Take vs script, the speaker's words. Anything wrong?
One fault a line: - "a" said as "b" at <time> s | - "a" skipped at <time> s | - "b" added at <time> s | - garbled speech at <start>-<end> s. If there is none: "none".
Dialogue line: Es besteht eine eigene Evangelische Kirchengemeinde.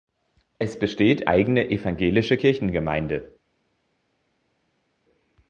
- "eine" skipped at 1.3 s